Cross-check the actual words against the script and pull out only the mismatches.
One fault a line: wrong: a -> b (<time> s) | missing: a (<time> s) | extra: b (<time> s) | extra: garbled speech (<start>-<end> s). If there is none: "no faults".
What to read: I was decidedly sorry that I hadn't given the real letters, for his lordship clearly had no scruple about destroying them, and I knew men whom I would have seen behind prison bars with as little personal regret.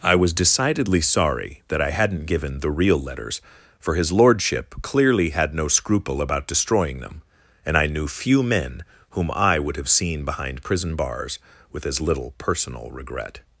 extra: few (8.1 s)